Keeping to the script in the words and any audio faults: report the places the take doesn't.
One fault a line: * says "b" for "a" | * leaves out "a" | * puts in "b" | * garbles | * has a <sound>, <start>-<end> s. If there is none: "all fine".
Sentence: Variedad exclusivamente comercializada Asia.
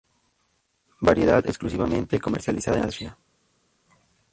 all fine